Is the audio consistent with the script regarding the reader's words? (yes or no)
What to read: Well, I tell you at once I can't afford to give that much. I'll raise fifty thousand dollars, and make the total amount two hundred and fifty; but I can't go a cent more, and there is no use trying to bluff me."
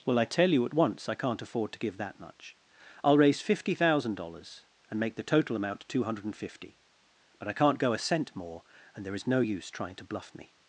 yes